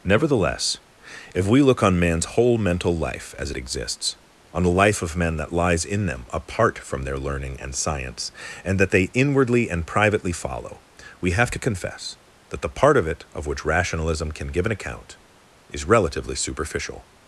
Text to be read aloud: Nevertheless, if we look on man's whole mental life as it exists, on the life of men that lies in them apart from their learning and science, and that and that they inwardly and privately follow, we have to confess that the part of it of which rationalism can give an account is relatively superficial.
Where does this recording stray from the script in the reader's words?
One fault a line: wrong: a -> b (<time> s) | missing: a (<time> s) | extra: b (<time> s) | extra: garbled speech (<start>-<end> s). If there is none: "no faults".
missing: and that (8.9 s)